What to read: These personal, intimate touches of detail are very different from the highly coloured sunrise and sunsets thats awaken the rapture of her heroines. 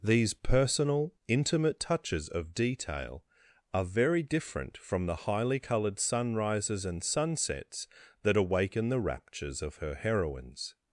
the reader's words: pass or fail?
fail